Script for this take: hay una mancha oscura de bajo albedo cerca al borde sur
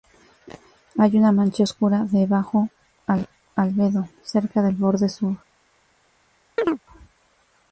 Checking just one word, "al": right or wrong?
wrong